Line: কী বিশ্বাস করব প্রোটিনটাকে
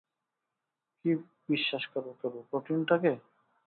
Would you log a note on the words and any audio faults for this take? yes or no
yes